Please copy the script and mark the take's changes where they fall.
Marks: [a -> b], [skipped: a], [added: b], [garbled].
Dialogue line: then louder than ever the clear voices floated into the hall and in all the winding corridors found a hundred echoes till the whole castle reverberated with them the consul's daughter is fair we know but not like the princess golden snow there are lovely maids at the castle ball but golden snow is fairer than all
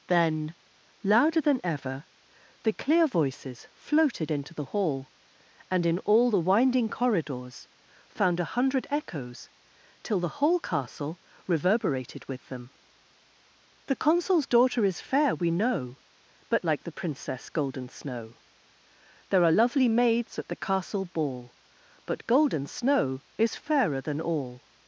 then louder than ever the clear voices floated into the hall and in all the winding corridors found a hundred echoes till the whole castle reverberated with them the consul's daughter is fair we know but [skipped: not] like the princess golden snow there are lovely maids at the castle ball but golden snow is fairer than all